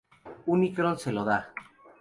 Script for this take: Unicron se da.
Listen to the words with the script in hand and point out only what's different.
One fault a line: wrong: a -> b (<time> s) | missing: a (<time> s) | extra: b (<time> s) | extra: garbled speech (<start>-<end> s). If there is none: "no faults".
extra: lo (1.1 s)